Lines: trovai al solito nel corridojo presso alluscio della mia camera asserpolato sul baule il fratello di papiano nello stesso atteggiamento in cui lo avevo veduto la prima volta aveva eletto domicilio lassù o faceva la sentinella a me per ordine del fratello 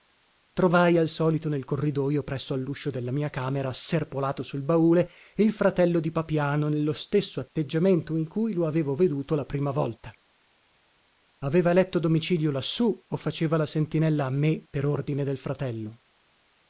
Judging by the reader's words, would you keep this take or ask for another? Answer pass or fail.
pass